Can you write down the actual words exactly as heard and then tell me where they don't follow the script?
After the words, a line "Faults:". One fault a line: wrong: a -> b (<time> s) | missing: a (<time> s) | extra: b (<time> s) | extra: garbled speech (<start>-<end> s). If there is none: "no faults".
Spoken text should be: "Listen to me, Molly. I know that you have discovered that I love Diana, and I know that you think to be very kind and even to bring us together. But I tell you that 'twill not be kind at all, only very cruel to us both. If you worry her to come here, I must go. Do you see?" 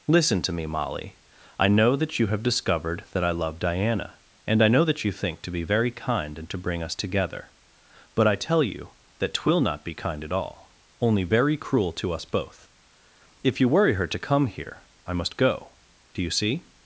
"Listen to me, Molly. I know that you have discovered that I love Diana, and I know that you think to be very kind and to bring us together. But I tell you that 'twill not be kind at all, only very cruel to us both. If you worry her to come here, I must go. Do you see?"
Faults:
missing: even (6.5 s)